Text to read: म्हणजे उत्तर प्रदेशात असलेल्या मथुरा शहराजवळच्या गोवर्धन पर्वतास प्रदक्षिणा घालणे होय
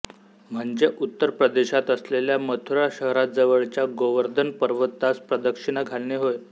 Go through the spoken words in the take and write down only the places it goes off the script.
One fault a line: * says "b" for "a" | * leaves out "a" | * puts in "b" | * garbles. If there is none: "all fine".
all fine